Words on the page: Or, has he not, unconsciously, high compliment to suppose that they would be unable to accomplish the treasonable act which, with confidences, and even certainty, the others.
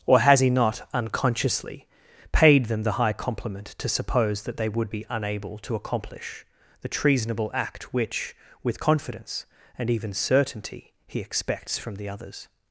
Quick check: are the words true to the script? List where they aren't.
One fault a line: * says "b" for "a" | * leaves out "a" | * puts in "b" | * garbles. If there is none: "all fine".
* puts in "paid them the"
* says "confidence" for "confidences"
* puts in "he expects from"